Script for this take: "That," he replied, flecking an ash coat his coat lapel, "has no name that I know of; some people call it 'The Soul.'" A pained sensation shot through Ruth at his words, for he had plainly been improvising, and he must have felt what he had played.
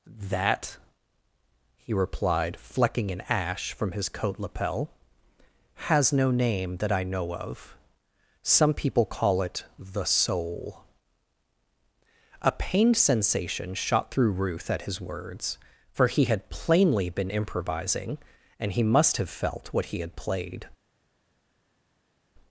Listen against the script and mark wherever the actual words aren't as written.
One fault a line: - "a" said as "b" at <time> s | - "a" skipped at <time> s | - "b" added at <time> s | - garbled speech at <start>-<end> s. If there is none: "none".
- "coat" said as "from" at 3.7 s